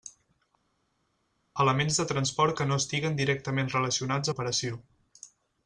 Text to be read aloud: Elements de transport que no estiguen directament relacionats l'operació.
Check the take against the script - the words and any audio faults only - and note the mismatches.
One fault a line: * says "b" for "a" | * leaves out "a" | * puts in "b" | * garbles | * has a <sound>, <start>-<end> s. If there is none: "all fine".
all fine